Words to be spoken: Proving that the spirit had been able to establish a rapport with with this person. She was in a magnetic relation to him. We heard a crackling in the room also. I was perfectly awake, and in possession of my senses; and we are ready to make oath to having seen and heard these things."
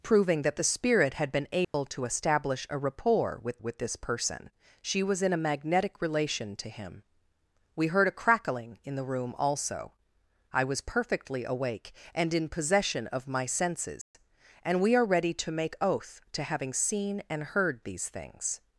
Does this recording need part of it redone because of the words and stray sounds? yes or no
yes